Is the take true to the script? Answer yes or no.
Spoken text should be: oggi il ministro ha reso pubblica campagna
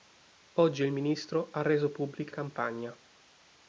yes